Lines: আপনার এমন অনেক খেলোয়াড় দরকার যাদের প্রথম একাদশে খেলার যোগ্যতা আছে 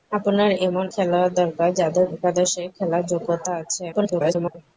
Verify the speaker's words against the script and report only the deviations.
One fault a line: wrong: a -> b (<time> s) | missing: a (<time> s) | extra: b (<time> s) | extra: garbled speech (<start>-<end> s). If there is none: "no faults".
missing: অনেক (0.8 s)
missing: প্রথম (2.1 s)
extra: garbled speech (3.9-4.6 s)